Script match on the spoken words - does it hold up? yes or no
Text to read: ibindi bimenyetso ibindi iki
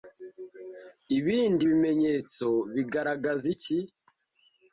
no